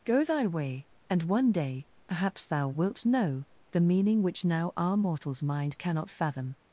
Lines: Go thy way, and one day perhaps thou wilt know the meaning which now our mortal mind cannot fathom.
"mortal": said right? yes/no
no